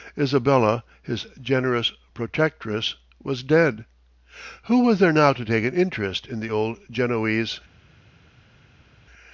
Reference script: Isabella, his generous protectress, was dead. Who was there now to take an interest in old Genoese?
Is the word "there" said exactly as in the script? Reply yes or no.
yes